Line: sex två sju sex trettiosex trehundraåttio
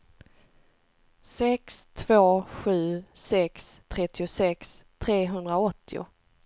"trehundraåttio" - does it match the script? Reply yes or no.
yes